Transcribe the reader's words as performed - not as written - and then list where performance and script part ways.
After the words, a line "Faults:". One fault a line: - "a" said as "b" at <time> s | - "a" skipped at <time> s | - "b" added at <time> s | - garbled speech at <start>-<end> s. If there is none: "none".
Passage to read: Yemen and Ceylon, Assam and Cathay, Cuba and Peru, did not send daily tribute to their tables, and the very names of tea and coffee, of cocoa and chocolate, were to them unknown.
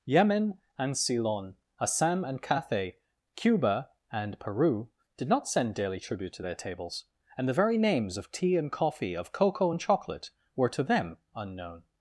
Yemen and Ceylon, Assam and Cathay, Cuba and Peru, did not send daily tribute to their tables, and the very names of tea and coffee, of cocoa and chocolate, were to them unknown.
Faults:
none